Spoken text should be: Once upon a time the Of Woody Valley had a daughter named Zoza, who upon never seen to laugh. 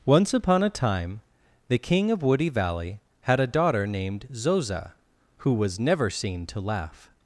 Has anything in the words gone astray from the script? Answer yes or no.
yes